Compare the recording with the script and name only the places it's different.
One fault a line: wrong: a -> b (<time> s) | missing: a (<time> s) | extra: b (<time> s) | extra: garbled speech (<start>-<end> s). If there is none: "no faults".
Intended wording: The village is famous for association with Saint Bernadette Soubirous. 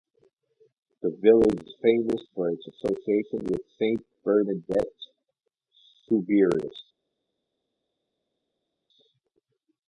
extra: its (2.5 s)